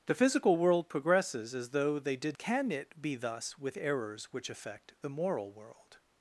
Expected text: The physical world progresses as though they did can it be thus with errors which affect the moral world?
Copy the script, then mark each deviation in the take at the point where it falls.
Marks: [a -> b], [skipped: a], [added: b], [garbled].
The physical world progresses as though they did can it be thus with errors which affect the moral world?